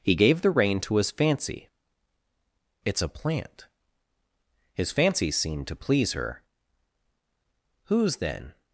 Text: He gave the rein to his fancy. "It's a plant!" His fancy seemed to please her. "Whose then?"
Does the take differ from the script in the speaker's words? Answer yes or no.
no